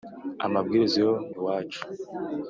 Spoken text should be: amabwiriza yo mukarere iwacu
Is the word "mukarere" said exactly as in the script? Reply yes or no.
no